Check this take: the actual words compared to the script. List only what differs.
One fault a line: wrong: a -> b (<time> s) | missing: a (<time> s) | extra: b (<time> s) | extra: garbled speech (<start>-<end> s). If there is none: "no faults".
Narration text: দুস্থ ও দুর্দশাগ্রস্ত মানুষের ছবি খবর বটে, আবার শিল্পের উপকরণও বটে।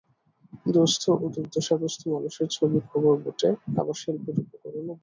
no faults